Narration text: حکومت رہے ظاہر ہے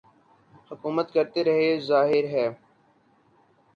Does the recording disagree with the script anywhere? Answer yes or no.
yes